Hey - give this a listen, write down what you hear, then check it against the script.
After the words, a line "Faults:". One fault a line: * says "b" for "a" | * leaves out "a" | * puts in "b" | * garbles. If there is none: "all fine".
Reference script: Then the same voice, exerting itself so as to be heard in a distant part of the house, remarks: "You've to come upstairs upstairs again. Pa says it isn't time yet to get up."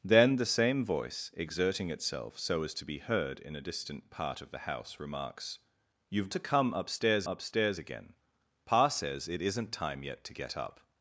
Then the same voice, exerting itself so as to be heard in a distant part of the house, remarks: "You've to come upstairs upstairs again. Pa says it isn't time yet to get up."
Faults:
all fine